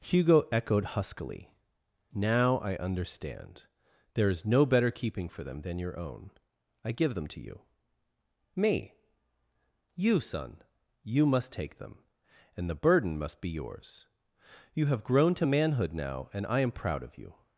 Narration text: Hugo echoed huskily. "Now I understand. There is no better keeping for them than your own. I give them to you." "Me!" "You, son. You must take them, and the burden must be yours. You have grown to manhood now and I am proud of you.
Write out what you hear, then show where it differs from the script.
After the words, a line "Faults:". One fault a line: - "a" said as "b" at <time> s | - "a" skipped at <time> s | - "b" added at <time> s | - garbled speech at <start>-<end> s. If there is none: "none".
Hugo echoed huskily. "Now I understand. There is no better keeping for them than your own. I give them to you." "Me!" "You, son. You must take them, and the burden must be yours. You have grown to manhood now and I am proud of you.
Faults:
none